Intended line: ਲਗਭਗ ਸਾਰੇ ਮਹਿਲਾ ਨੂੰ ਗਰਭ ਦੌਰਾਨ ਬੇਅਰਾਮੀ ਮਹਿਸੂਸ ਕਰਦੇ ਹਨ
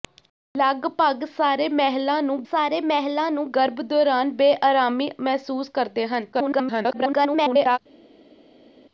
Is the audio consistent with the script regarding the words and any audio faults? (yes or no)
no